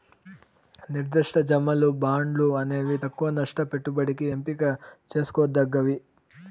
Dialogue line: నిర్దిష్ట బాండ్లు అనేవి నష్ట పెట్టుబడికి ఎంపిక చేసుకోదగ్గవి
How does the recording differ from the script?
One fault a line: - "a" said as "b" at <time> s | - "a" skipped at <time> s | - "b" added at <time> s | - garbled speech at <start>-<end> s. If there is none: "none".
- "జమలు" added at 1.5 s
- "తక్కవ" added at 3.0 s